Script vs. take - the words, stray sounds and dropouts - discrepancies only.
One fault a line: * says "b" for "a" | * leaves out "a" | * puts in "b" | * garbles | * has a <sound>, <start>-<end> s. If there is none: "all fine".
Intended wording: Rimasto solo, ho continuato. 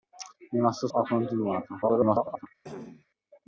* leaves out "solo"
* garbles
* has a cough, 2.6-3.1 s